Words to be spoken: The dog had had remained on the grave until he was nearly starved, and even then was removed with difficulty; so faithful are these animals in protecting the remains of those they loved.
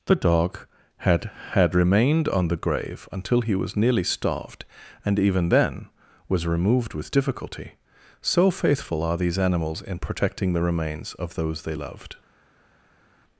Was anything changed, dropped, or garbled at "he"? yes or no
no